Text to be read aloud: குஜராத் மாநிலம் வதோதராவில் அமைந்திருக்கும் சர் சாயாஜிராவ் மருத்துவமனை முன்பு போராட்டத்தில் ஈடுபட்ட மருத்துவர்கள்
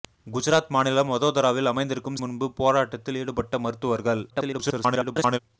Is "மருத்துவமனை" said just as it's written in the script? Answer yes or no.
no